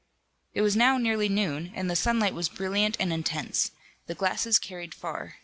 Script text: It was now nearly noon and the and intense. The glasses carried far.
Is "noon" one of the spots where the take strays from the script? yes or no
no